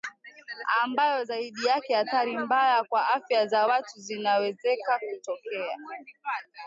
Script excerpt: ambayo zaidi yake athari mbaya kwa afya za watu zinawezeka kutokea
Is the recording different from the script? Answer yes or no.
no